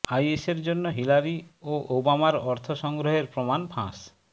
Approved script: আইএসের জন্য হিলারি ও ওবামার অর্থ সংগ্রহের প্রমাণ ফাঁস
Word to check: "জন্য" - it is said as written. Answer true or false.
true